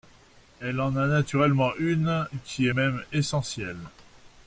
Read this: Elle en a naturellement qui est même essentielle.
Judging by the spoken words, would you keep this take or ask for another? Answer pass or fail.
fail